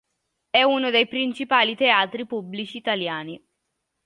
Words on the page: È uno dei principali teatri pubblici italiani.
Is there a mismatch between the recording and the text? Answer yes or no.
no